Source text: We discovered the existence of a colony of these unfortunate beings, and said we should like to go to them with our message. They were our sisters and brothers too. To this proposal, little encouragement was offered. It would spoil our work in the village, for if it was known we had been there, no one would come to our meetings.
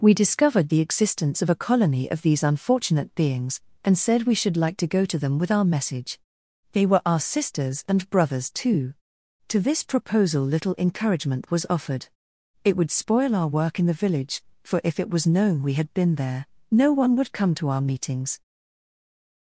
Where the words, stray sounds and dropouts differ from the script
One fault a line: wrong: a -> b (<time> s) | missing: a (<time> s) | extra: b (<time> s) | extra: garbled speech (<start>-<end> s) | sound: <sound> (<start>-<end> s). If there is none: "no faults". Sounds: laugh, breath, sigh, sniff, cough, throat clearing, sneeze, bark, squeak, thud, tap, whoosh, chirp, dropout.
no faults